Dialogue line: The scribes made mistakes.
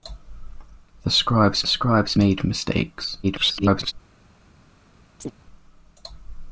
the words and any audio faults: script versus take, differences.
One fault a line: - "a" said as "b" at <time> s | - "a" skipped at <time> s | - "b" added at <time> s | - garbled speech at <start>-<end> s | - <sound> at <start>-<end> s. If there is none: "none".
- "scribes" added at 1.7 s
- garbled speech at 3.2-3.9 s
- chirp at 5.2-5.3 s